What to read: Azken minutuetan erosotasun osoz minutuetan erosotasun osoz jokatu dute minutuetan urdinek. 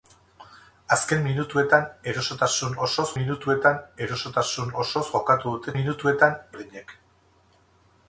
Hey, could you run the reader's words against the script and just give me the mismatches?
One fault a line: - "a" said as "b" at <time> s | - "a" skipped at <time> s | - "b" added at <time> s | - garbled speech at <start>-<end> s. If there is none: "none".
none